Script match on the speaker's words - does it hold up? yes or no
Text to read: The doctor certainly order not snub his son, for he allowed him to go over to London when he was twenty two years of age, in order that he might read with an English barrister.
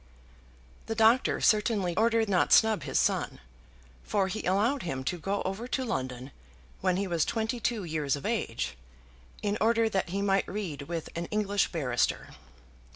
yes